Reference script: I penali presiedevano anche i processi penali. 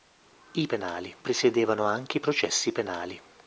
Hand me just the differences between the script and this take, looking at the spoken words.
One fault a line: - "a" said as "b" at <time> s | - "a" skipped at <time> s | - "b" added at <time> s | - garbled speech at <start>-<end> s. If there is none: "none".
none